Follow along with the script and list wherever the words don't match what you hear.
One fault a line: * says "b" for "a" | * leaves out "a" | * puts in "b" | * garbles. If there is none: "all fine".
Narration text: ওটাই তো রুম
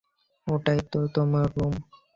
* puts in "তোমার"